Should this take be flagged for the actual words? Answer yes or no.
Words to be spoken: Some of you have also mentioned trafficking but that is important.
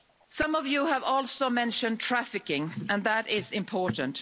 yes